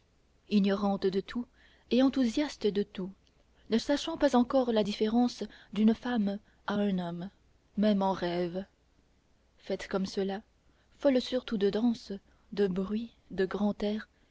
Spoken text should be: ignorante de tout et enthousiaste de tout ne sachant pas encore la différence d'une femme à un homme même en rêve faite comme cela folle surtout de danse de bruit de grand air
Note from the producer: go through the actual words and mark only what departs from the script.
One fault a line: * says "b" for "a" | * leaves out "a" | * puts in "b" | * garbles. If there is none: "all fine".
all fine